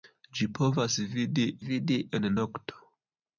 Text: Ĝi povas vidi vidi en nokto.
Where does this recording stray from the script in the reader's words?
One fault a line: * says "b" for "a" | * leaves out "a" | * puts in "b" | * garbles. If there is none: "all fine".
all fine